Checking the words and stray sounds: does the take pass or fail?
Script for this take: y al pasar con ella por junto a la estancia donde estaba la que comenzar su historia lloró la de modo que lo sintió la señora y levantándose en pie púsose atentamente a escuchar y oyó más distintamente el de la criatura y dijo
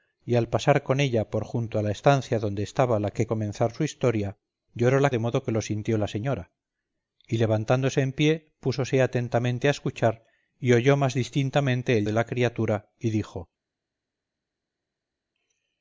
pass